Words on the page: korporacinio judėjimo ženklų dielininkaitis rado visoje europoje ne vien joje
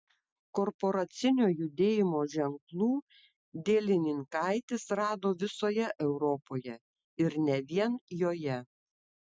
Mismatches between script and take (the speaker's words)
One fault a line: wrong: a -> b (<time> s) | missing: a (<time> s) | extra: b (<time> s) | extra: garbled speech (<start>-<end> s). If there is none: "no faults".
extra: ir (7.3 s)